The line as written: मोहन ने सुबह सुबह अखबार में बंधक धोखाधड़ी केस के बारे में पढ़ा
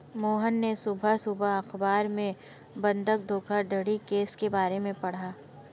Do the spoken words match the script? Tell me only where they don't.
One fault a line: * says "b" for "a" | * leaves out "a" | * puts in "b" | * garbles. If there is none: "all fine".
all fine